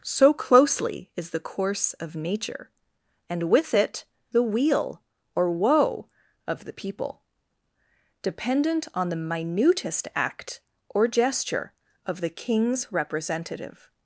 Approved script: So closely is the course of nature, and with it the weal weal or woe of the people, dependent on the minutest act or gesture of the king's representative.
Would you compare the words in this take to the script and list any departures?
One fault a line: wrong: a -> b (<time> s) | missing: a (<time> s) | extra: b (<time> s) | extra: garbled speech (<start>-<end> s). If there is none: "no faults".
missing: weal (5.0 s)